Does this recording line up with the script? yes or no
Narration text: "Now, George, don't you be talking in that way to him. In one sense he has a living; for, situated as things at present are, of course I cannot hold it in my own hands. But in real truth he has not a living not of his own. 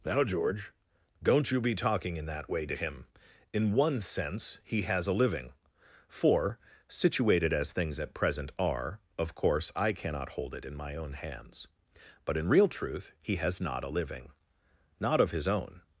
yes